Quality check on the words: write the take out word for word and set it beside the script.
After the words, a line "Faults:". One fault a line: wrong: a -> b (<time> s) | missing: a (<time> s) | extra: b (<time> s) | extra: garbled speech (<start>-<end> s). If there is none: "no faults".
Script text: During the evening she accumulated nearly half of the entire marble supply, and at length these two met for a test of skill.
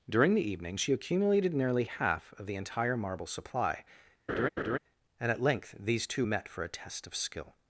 During the evening she accumulated nearly half of the entire marble supply, and at length these two met for a test of skill.
Faults:
no faults